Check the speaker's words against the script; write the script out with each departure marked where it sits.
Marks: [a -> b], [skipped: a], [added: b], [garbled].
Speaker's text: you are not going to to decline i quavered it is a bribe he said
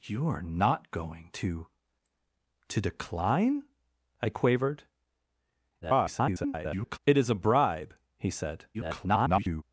you are not going to to decline i quavered [garbled] it is a bribe he said [garbled]